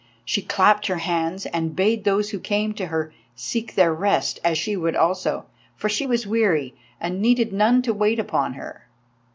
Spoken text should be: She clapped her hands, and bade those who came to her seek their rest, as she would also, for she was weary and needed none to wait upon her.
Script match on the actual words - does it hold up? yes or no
yes